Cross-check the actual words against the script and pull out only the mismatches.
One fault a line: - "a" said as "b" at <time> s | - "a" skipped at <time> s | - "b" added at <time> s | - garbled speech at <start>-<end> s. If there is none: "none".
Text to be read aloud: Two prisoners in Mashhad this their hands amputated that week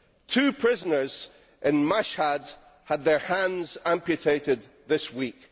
- "this" said as "had" at 2.9 s
- "that" said as "this" at 4.9 s